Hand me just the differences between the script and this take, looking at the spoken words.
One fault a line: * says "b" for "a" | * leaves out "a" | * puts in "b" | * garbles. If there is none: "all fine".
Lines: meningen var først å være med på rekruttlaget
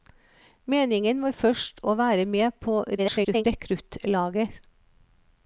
* garbles